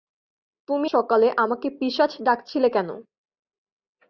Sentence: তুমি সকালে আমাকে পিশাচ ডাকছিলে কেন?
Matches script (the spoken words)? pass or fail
pass